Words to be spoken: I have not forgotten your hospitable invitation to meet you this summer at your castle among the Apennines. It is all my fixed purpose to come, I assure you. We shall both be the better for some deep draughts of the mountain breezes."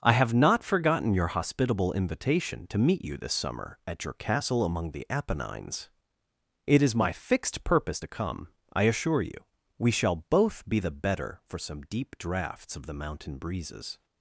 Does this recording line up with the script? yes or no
no